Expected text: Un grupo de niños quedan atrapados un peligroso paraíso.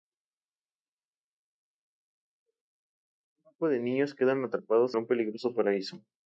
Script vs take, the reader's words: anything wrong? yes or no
no